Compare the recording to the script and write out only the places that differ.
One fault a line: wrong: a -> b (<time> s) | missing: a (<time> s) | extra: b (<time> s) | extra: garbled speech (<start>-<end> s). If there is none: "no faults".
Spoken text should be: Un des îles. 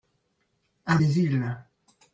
no faults